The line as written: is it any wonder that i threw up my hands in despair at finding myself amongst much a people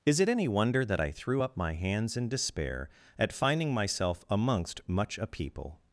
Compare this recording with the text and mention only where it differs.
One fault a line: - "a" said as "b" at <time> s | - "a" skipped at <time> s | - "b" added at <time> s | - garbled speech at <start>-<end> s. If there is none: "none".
none